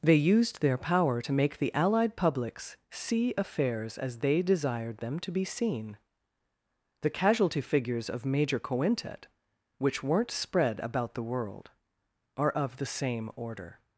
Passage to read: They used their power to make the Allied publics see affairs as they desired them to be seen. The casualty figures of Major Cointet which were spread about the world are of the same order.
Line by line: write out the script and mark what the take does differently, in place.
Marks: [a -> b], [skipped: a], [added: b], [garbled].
They used their power to make the Allied publics see affairs as they desired them to be seen. The casualty figures of Major Cointet which [were -> weren't] spread about the world are of the same order.